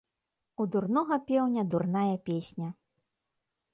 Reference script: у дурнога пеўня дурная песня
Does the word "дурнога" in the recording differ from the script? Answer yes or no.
no